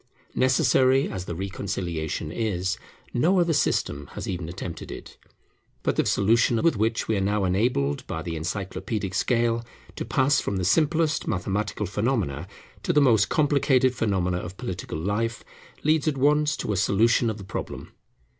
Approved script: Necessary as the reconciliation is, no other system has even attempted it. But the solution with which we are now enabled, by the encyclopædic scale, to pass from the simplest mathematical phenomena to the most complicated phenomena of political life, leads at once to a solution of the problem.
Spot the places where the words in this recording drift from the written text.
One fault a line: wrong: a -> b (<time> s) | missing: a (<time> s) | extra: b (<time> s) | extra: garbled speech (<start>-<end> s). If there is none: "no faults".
no faults